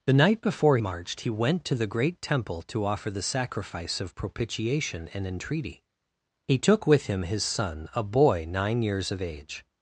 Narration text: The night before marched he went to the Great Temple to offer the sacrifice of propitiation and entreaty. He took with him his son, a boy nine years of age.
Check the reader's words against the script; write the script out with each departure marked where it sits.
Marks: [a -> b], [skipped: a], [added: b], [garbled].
The night before marched he went to the Great Temple to offer the sacrifice of propitiation and entreaty. He took with him his son, a boy nine years of age.